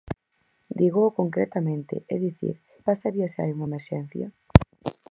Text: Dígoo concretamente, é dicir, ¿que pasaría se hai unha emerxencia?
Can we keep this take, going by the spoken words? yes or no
no